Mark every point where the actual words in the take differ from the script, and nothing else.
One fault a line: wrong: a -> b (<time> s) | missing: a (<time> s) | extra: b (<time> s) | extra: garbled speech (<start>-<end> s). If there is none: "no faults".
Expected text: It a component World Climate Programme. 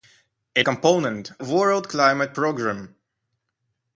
no faults